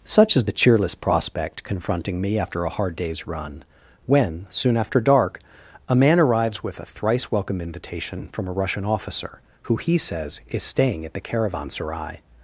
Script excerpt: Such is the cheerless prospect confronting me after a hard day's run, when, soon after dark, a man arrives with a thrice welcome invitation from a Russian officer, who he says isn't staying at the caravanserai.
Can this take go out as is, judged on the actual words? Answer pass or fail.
fail